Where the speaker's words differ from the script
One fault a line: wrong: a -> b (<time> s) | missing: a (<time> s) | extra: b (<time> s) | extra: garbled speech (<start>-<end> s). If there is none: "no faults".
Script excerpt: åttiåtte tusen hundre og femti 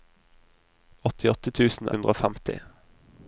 no faults